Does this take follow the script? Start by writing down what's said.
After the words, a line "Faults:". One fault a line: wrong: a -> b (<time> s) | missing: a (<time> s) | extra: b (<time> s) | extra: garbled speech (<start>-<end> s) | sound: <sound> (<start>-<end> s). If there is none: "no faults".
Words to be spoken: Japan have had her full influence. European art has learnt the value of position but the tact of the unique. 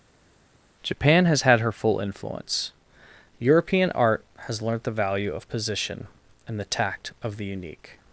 Japan has had her full influence. European art has learnt the value of position and the tact of the unique.
Faults:
wrong: have -> has (1.2 s)
wrong: but -> and (6.5 s)